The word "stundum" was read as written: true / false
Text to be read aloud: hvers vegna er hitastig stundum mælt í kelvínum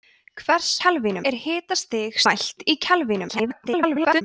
false